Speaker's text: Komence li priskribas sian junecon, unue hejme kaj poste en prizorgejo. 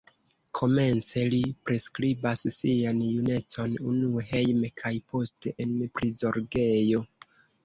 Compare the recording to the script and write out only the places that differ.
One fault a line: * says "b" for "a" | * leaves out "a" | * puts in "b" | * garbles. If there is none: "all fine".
all fine